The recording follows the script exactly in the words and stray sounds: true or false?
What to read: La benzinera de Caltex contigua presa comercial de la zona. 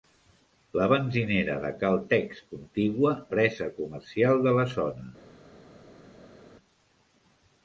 true